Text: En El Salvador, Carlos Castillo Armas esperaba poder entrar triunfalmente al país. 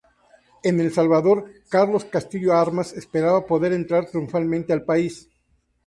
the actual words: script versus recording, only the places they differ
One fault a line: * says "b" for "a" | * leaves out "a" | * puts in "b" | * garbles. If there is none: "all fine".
all fine